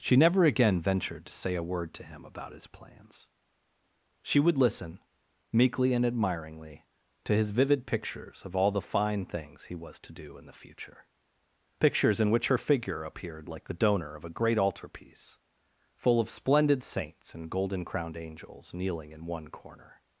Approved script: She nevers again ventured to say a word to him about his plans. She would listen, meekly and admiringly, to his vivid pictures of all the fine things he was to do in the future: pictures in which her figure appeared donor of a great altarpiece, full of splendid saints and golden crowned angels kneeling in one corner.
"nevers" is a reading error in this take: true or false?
true